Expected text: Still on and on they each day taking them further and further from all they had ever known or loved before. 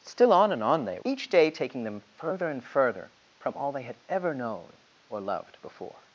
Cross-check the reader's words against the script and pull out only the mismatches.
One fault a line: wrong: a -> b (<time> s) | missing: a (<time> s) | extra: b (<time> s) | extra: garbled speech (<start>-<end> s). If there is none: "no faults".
no faults